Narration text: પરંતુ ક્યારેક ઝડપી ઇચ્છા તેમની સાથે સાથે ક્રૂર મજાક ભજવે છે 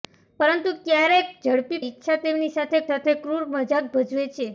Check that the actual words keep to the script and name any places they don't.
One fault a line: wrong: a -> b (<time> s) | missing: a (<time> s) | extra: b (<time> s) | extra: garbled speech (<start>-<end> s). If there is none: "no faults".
no faults